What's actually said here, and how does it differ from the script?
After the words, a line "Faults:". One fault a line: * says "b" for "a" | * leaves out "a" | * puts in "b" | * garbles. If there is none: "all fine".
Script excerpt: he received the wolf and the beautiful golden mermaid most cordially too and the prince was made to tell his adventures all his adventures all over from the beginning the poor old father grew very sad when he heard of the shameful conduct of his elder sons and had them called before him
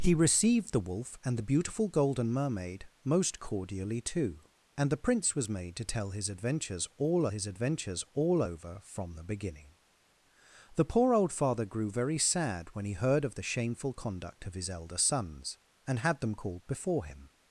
he received the wolf and the beautiful golden mermaid most cordially too and the prince was made to tell his adventures all his adventures all over from the beginning the poor old father grew very sad when he heard of the shameful conduct of his elder sons and had them called before him
Faults:
all fine